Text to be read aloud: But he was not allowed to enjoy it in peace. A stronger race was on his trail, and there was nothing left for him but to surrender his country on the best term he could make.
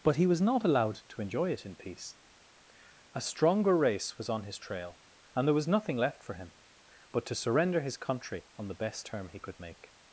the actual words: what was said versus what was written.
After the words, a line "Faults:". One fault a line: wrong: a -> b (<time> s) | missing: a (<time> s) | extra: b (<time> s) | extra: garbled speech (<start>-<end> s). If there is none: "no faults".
But he was not allowed to enjoy it in peace. A stronger race was on his trail, and there was nothing left for him but to surrender his country on the best term he could make.
Faults:
no faults